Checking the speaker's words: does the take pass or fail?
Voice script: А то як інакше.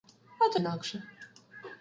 fail